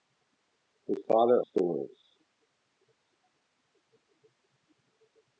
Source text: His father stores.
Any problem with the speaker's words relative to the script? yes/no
no